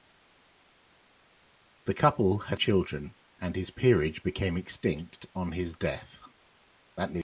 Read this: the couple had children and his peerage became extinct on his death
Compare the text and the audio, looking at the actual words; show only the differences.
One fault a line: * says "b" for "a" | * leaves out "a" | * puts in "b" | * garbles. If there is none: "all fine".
all fine